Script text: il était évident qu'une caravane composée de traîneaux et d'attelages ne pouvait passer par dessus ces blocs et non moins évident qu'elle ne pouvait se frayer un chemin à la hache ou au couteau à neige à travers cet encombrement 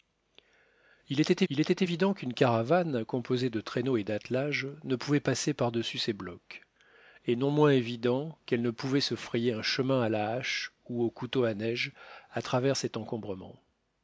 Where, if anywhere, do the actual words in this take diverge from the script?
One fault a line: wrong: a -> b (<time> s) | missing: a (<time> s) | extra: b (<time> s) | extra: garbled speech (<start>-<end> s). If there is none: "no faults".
extra: il était (1.5 s)